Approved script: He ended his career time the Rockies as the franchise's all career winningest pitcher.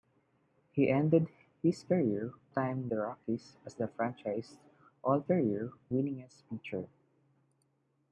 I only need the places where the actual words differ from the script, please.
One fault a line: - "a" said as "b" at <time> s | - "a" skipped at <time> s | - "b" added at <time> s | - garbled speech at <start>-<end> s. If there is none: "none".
none